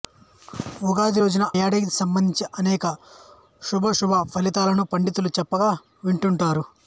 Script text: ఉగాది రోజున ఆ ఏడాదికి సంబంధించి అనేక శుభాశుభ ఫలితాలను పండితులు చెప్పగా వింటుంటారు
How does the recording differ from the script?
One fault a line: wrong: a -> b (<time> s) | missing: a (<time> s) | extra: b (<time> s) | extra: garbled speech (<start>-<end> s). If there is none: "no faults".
missing: ఆ (1.5 s)